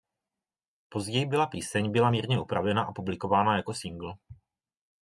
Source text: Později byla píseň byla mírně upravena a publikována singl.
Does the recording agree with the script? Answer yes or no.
no